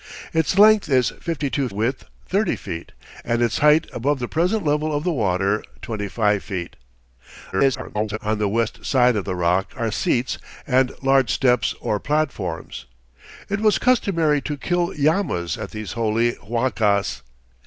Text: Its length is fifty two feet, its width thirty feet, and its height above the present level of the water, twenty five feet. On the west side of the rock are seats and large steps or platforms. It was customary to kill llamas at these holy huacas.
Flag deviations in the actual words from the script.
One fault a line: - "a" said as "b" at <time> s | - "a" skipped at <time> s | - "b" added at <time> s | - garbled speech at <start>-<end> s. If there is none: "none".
- "feet its" skipped at 1.7 s
- garbled speech at 7.5-8.2 s